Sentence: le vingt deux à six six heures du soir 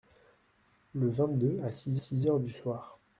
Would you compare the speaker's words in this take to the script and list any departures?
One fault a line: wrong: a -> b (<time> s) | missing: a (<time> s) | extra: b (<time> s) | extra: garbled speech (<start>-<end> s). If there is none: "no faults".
no faults